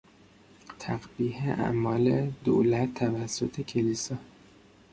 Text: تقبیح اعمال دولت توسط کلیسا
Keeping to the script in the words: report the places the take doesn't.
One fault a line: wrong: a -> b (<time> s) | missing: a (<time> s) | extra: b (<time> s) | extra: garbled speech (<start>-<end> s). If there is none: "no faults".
no faults